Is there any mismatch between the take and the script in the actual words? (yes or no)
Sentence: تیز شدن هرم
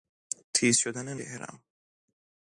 no